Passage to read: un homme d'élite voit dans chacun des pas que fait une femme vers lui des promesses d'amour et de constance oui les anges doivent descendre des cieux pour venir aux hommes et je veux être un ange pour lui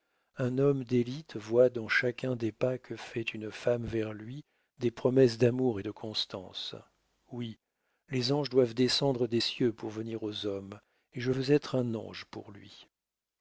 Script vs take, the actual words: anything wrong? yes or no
no